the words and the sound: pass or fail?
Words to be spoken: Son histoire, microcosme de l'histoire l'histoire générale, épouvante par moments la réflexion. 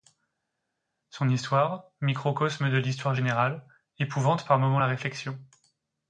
fail